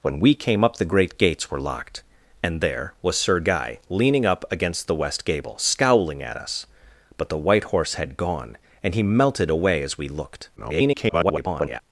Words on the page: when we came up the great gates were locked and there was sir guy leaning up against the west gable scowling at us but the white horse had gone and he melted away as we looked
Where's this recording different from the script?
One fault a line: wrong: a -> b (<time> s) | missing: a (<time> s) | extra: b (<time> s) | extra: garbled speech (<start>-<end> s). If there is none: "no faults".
extra: garbled speech (10.6-11.8 s)